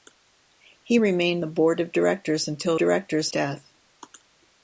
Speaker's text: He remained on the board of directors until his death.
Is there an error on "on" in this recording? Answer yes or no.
yes